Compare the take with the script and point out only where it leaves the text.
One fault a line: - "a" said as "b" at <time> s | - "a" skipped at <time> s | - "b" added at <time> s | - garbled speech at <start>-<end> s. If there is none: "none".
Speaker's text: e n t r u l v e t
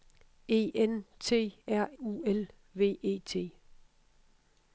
none